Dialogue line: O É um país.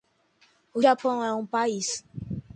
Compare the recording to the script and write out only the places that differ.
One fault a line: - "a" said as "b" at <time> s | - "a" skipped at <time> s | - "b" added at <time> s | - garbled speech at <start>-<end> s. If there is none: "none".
- "Japão" added at 0.8 s